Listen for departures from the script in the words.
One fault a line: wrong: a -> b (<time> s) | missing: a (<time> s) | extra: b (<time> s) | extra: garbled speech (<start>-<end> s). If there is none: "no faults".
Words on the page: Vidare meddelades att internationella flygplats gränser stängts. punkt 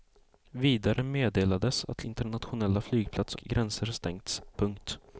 no faults